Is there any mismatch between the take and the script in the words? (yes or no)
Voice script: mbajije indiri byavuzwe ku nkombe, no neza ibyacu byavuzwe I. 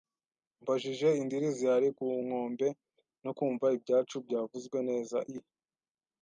yes